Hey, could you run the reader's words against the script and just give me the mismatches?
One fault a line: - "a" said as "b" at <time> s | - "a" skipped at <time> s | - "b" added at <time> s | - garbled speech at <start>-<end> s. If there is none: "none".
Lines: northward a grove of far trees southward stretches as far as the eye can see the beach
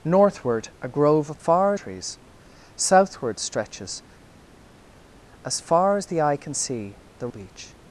none